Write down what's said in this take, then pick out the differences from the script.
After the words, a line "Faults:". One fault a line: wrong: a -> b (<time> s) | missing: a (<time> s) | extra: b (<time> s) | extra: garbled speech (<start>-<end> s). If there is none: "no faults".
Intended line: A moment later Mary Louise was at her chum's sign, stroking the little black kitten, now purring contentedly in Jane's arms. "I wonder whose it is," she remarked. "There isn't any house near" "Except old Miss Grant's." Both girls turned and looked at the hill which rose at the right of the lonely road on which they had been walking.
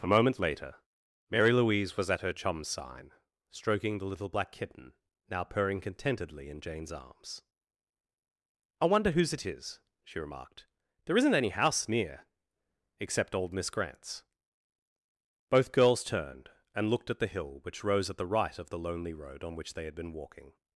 A moment later Mary Louise was at her chum's sign, stroking the little black kitten, now purring contentedly in Jane's arms. "I wonder whose it is," she remarked. "There isn't any house near" "Except old Miss Grant's." Both girls turned and looked at the hill which rose at the right of the lonely road on which they had been walking.
Faults:
no faults